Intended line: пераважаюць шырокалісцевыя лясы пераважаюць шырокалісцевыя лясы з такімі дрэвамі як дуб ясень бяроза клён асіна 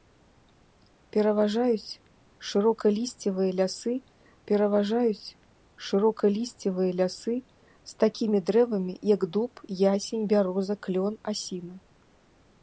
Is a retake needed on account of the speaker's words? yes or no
no